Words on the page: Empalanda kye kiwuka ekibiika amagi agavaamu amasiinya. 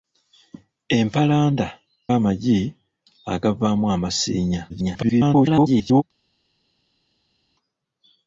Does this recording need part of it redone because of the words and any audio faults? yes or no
yes